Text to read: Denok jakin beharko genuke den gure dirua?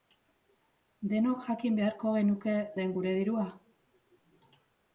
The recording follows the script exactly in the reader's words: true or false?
true